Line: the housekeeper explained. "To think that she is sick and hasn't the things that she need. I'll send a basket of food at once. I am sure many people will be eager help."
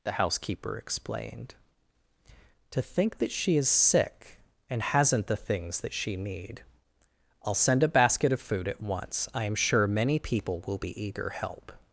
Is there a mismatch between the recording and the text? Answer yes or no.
no